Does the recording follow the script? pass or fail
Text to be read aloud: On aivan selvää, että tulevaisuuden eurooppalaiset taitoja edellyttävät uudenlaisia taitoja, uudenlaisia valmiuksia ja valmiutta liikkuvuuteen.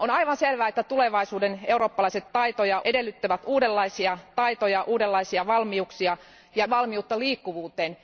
pass